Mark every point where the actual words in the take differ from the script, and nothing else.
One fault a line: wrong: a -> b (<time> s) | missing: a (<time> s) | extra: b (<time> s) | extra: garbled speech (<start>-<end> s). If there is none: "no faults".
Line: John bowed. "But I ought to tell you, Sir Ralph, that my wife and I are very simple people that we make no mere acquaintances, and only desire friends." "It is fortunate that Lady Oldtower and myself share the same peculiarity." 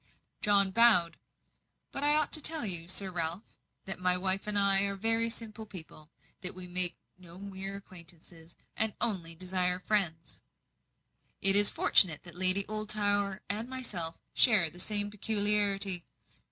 no faults